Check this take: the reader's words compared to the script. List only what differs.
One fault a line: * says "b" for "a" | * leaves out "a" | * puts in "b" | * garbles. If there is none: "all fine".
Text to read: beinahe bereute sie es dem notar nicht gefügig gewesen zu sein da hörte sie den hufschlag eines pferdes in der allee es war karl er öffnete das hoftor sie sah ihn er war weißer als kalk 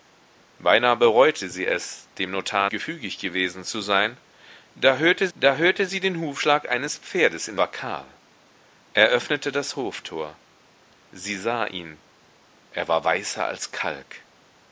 * leaves out "nicht"
* puts in "da hörte"
* leaves out "der allee es"